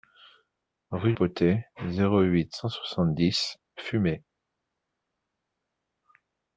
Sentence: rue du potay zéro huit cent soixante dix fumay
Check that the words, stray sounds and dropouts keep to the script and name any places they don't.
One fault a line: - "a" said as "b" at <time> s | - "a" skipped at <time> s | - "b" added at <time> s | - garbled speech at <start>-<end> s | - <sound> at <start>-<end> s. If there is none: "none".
- "du" skipped at 1.1 s